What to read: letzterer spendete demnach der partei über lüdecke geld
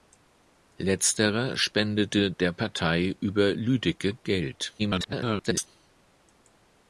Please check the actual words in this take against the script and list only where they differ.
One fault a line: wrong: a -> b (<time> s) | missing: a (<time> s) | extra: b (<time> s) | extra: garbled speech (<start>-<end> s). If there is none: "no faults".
missing: demnach (2.3 s)
extra: garbled speech (4.8-5.7 s)